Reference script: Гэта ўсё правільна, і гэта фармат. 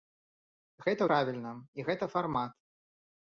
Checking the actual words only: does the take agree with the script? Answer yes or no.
no